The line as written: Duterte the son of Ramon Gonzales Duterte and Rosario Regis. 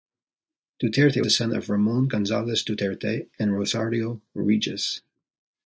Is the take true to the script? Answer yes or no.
yes